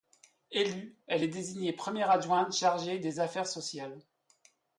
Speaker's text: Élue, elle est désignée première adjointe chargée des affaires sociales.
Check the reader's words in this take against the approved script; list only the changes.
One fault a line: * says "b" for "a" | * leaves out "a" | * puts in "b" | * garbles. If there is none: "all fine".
all fine